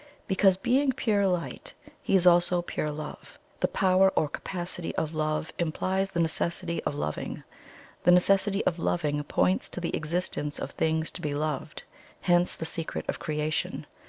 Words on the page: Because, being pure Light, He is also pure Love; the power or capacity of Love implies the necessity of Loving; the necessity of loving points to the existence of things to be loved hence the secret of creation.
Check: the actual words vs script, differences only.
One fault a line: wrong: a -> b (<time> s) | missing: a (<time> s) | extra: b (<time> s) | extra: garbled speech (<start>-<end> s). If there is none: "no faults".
no faults